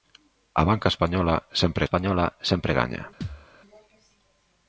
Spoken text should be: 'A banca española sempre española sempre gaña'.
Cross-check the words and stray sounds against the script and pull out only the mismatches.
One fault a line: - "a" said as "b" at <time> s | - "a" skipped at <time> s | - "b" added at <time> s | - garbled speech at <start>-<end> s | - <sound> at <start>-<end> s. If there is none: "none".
- thud at 3.2-3.5 s